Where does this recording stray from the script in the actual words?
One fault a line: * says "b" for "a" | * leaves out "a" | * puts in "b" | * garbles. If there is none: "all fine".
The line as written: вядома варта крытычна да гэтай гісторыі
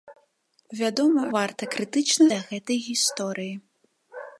all fine